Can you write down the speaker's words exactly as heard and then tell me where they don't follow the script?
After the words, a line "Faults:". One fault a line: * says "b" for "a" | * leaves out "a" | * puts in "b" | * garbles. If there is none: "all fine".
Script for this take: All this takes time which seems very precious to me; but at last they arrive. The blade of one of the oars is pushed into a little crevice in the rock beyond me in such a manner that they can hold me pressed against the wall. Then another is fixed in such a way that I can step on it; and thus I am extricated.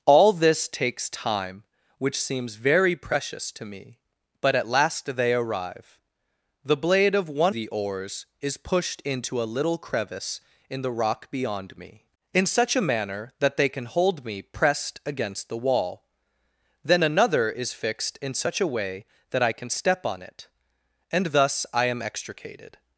All this takes time which seems very precious to me; but at last they arrive. The blade of one the oars is pushed into a little crevice in the rock beyond me in such a manner that they can hold me pressed against the wall. Then another is fixed in such a way that I can step on it; and thus I am extricated.
Faults:
* leaves out "of"